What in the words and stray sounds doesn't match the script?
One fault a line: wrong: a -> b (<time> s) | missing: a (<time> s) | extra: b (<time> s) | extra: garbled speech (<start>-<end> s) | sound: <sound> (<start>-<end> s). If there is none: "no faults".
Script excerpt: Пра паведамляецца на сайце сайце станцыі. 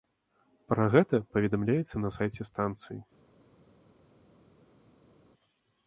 extra: гэта (0.9 s)
missing: сайце (2.4 s)